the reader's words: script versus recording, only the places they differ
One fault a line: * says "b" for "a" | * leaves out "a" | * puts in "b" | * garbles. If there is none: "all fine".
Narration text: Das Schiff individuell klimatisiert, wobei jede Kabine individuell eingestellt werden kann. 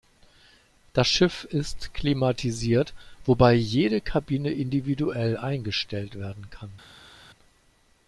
* says "ist" for "individuell"